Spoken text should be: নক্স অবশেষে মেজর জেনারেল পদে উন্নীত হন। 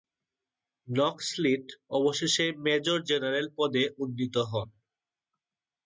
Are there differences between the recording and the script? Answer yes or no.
yes